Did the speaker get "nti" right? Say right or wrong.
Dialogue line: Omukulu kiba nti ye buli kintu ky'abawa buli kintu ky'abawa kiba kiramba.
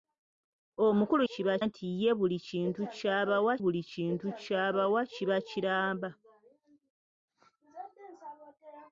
right